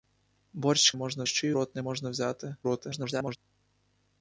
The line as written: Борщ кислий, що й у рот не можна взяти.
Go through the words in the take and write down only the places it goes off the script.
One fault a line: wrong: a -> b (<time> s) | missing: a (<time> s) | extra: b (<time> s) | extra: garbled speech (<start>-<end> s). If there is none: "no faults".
wrong: кислий -> можна (0.9 s)
missing: у (1.5 s)
extra: garbled speech (2.6-3.4 s)